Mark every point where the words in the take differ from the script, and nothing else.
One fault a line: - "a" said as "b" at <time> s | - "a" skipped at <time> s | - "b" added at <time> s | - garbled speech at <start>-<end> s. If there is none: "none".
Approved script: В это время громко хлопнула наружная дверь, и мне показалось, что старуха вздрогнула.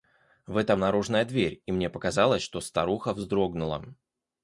- "время громко хлопнула" skipped at 0.8 s